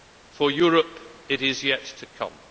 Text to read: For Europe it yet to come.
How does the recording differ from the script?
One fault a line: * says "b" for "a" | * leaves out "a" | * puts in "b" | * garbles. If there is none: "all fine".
* puts in "is"